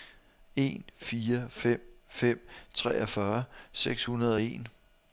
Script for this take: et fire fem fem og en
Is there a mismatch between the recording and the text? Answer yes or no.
yes